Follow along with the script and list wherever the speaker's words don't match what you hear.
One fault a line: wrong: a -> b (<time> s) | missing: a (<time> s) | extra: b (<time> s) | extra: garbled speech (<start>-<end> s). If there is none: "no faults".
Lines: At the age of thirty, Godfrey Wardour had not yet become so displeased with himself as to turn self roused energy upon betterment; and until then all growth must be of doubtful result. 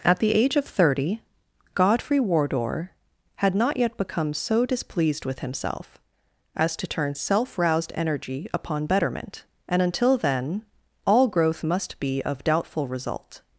no faults